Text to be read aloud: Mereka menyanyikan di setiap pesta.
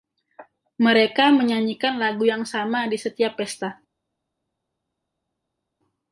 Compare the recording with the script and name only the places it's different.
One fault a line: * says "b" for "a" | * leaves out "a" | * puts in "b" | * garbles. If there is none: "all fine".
* puts in "lagu yang sama"